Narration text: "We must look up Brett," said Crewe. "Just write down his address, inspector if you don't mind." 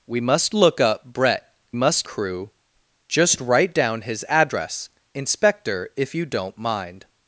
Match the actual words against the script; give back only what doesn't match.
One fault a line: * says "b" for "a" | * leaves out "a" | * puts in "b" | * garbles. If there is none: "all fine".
* says "must" for "said"